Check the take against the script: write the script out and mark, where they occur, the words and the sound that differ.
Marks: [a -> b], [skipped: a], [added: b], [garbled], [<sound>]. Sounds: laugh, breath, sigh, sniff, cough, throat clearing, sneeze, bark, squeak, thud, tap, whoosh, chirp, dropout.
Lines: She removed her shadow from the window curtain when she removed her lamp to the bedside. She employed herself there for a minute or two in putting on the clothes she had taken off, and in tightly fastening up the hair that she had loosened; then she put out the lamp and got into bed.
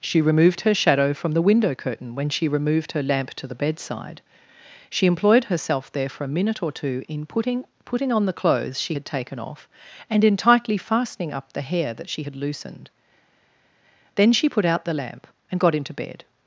She removed her shadow from the window curtain when she removed her lamp to the bedside. She employed herself there for a minute or two in putting [added: putting] on the clothes she had taken off, and in tightly fastening up the hair that she had loosened; then she put out the lamp and got into bed.